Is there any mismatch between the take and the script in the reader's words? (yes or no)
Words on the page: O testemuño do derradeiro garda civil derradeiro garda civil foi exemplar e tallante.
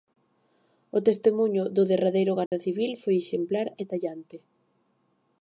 yes